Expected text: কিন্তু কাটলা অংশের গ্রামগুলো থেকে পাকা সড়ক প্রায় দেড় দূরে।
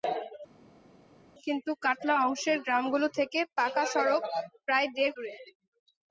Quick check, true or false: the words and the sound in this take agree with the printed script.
true